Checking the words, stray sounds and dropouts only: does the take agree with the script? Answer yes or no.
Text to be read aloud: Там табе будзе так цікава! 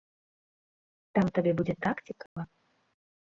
no